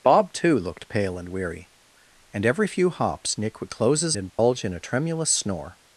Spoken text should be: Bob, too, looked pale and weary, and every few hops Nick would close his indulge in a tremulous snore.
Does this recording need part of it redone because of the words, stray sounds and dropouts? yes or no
yes